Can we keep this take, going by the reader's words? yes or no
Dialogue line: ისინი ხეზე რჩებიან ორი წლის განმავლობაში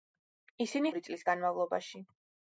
no